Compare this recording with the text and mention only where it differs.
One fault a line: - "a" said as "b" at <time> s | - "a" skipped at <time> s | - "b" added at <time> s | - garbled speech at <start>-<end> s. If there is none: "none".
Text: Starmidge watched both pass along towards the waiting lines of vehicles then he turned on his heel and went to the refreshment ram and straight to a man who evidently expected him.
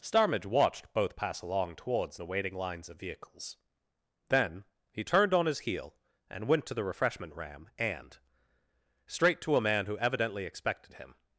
none